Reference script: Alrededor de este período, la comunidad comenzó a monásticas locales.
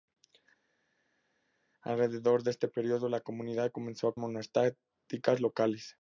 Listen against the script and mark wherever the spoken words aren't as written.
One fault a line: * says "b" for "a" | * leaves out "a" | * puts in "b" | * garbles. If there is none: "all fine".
all fine